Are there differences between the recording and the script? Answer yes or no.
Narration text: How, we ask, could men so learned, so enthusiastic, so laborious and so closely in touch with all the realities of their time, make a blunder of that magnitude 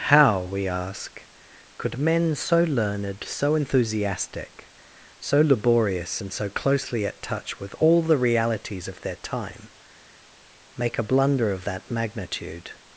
yes